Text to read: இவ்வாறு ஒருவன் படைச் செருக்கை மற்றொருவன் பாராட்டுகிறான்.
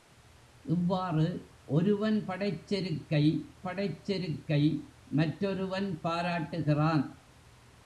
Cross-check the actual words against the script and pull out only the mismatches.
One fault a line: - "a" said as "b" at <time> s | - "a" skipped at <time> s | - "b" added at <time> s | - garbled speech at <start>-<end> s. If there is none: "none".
- "படைச் செருக்கை" added at 3.6 s